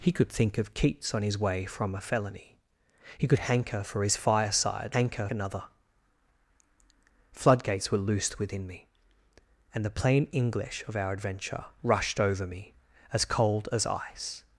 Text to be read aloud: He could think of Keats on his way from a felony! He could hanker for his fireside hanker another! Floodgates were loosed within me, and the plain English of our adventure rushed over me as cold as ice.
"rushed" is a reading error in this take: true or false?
false